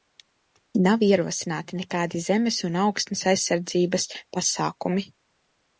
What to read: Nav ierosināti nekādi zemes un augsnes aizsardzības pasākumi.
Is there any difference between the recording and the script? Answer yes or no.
no